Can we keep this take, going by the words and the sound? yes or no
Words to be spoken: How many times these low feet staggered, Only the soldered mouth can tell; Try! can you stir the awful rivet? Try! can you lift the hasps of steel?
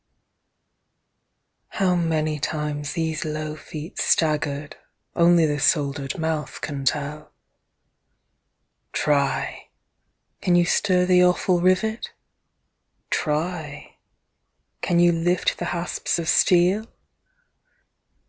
yes